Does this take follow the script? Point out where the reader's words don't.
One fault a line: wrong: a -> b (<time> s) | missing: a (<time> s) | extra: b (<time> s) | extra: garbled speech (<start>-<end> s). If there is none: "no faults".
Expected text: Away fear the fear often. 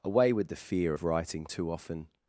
wrong: fear -> with (0.3 s)
extra: of writing too (0.9 s)